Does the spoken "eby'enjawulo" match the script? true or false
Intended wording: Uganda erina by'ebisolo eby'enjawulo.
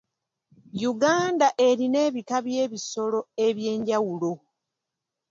true